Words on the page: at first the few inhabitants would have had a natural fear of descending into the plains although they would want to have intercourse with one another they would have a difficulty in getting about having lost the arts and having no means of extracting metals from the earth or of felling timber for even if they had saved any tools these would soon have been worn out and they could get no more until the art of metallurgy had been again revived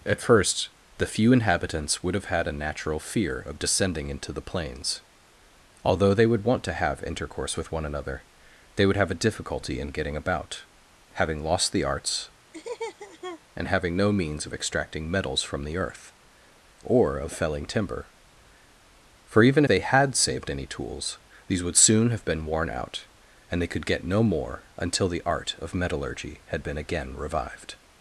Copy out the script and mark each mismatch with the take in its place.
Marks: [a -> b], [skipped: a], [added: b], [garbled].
at first the few inhabitants would have had a natural fear of descending into the plains although they would want to have intercourse with one another they would have a difficulty in getting about having lost the arts and having no means of extracting metals from the earth or of felling timber for even [skipped: if] they had saved any tools these would soon have been worn out and they could get no more until the art of metallurgy had been again revived